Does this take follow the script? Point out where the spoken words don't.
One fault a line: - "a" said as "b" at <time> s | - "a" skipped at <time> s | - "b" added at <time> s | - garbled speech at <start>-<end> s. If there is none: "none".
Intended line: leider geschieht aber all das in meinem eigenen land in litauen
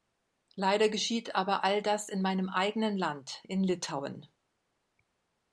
none